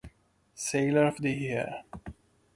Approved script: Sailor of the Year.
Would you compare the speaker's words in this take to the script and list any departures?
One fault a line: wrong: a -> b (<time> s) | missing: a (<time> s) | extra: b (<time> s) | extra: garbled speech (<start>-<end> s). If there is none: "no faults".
no faults